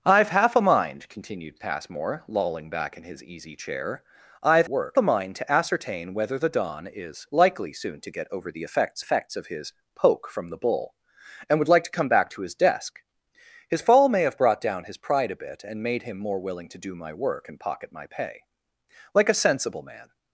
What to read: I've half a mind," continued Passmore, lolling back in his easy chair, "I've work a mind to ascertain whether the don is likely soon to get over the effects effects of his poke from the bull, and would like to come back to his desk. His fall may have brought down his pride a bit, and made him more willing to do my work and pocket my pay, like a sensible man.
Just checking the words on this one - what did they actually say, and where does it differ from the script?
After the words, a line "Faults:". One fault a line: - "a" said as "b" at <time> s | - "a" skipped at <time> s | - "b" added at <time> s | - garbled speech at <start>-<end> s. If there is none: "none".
I've half a mind," continued Passmore, lolling back in his easy chair, "I've work a mind to ascertain whether the don is likely soon to get over the effects effects of his poke from the bull, and would like to come back to his desk. His fall may have brought down his pride a bit, and made him more willing to do my work and pocket my pay, like a sensible man.
Faults:
none